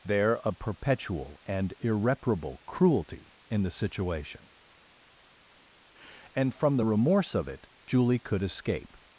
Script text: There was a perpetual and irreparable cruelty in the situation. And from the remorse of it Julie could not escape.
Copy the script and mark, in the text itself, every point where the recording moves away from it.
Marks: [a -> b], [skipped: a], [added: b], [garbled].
There [skipped: was] a perpetual and irreparable cruelty in the situation. And from the remorse of it Julie could [skipped: not] escape.